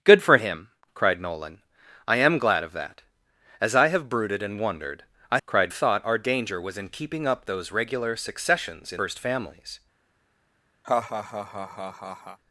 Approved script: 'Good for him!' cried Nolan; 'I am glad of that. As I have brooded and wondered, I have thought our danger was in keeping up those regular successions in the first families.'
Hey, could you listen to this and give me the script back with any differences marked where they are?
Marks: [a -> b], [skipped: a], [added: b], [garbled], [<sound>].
'Good for him!' cried Nolan; 'I am glad of that. As I have brooded and wondered, I [have -> cried] thought our danger was in keeping up those regular successions in [skipped: the] first families.' [laugh]